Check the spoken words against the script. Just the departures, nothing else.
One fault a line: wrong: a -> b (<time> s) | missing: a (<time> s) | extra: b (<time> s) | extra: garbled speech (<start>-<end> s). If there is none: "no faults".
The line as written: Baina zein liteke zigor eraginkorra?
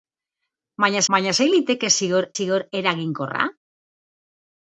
extra: baina (1.1 s)
extra: zigor (2.3 s)